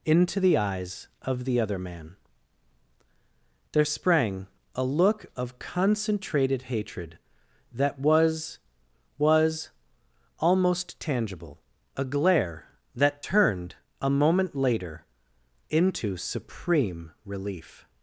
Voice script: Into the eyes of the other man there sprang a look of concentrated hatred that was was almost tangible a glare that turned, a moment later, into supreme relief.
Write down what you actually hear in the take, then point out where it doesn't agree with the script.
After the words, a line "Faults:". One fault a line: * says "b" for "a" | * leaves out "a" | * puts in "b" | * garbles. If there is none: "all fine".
Into the eyes of the other man there sprang a look of concentrated hatred that was was almost tangible a glare that turned, a moment later, into supreme relief.
Faults:
all fine